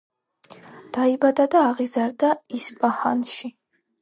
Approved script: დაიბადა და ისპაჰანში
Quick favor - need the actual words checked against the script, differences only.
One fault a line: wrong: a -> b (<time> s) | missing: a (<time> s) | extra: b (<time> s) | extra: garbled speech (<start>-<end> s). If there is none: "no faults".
extra: აღიზარდა (1.7 s)